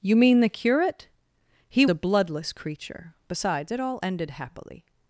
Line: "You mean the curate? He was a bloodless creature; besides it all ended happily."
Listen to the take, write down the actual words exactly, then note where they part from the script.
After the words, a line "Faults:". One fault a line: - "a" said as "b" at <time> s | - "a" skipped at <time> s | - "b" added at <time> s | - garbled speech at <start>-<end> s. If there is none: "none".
"You mean the curate? He a bloodless creature; besides it all ended happily."
Faults:
- "was" skipped at 1.9 s